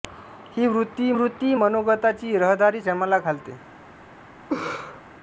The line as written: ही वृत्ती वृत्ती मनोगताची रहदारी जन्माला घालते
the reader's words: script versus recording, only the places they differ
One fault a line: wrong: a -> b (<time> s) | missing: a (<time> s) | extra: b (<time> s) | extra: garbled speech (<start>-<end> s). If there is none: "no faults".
no faults